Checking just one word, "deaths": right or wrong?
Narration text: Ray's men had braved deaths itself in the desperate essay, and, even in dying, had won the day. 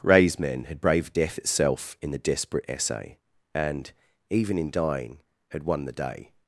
wrong